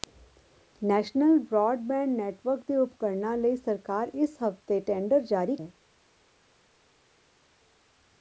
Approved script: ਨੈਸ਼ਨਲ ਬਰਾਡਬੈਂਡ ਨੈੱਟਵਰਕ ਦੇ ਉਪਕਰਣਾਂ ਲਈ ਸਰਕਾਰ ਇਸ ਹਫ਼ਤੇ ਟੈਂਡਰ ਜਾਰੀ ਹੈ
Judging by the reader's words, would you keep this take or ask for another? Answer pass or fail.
pass